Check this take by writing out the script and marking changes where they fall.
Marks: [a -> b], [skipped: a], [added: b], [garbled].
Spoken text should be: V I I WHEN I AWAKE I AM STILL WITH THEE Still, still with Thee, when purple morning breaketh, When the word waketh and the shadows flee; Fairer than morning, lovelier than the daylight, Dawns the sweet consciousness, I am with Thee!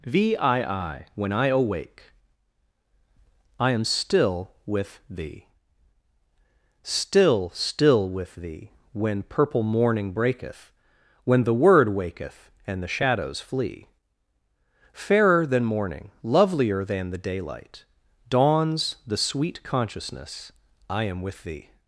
V I I WHEN I AWAKE I AM STILL WITH THEE Still, still with Thee, when purple morning breaketh, When the word waketh and the shadows flee; Fairer than morning, lovelier than the daylight, Dawns the sweet consciousness, I am with Thee!